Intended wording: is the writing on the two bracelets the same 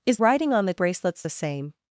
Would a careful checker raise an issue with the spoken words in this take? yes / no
yes